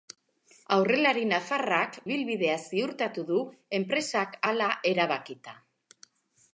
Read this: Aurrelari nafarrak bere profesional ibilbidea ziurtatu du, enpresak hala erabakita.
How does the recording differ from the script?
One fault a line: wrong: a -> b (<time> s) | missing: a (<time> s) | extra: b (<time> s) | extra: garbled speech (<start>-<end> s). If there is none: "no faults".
missing: bere profesional (2.0 s)